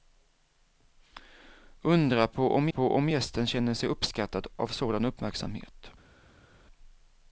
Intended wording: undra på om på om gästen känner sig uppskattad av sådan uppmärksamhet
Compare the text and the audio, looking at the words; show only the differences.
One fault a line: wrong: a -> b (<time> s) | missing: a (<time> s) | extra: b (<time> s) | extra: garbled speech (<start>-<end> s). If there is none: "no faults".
no faults